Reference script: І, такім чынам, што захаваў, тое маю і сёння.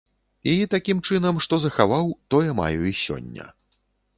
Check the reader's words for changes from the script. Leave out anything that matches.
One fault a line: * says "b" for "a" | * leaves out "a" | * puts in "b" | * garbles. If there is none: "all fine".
all fine